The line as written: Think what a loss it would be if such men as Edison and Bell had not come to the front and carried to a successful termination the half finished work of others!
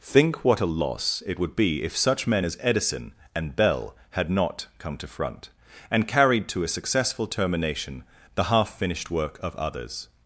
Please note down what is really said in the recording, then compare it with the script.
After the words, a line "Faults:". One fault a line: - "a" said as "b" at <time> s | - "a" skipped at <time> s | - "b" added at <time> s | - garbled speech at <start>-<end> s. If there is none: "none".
Think what a loss it would be if such men as Edison and Bell had not come to front and carried to a successful termination the half finished work of others!
Faults:
- "the" skipped at 5.1 s